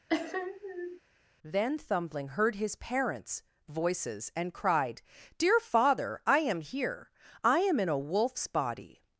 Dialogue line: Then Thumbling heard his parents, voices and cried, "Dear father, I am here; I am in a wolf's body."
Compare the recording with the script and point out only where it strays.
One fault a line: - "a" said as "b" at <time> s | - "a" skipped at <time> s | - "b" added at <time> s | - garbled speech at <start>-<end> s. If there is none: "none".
none